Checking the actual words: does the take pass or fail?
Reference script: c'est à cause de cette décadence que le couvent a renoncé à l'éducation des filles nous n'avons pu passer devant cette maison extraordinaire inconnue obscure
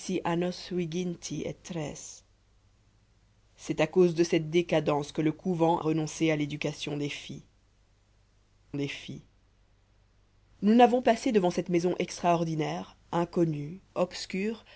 fail